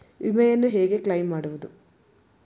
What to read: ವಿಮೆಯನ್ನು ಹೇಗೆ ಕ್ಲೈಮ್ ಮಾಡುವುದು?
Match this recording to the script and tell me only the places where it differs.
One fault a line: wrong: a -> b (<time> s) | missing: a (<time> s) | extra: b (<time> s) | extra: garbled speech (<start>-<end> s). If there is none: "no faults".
no faults